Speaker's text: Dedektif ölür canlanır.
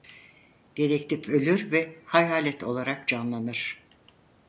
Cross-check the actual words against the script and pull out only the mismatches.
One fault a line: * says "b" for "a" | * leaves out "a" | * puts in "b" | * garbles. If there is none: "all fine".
* puts in "ve hayalet olarak"